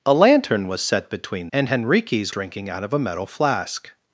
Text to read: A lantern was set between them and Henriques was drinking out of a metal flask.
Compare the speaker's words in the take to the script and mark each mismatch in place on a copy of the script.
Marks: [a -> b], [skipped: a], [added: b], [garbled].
A lantern was set between [skipped: them] and Henriques [skipped: was] drinking out of a metal flask.